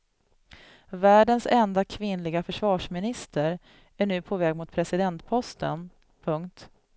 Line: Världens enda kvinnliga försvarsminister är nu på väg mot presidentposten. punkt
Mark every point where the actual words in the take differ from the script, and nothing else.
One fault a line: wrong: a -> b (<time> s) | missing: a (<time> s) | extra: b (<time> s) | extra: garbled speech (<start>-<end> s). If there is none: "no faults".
no faults